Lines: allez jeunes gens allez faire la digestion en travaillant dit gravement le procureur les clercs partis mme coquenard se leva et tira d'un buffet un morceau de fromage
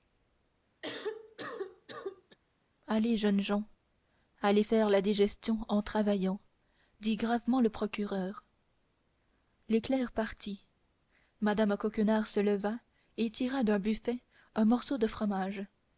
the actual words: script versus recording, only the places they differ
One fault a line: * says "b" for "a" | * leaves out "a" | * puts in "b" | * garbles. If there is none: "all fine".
all fine